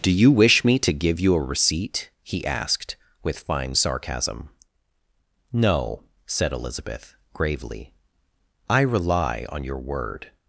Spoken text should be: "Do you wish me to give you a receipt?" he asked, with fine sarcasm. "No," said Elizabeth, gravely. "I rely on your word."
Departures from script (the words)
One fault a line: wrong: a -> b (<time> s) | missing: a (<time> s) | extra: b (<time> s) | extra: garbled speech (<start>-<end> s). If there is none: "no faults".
no faults